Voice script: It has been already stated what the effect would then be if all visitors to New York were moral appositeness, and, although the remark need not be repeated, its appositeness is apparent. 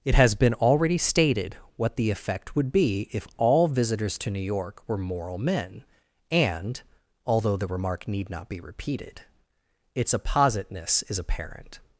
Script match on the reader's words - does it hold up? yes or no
no